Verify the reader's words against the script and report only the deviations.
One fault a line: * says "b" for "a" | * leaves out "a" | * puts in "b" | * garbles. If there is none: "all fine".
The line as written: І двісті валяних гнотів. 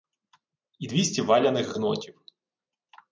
all fine